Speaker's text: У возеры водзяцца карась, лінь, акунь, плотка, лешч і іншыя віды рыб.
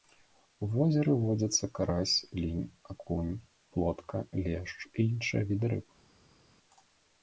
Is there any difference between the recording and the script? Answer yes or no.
no